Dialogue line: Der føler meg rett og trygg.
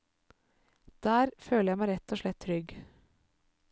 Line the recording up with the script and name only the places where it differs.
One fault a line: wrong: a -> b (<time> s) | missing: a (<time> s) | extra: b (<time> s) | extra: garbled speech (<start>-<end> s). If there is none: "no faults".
extra: jeg (1.7 s)
extra: slett (2.2 s)